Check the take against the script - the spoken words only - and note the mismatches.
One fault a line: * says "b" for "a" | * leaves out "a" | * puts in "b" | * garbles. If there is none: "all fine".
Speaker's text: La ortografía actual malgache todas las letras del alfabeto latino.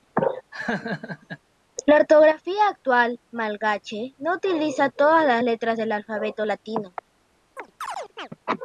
* puts in "no utiliza"